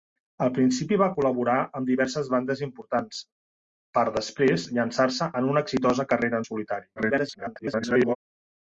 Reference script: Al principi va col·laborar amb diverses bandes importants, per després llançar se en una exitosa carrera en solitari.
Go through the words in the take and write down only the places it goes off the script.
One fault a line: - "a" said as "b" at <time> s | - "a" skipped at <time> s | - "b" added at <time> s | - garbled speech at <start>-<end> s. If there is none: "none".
- garbled speech at 7.0-8.2 s